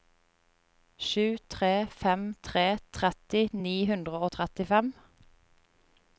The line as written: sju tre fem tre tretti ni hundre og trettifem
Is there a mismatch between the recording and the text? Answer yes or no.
no